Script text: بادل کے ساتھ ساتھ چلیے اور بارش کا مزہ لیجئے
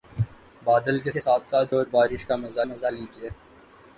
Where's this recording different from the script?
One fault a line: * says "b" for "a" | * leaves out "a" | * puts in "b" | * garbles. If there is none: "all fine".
* puts in "کے"
* leaves out "چلیے"
* puts in "مزہ"